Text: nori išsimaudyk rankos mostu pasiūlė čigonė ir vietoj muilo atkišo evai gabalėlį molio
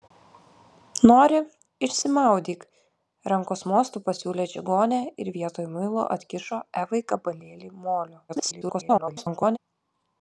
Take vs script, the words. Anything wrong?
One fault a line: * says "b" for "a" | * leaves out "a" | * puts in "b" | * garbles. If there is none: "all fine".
* garbles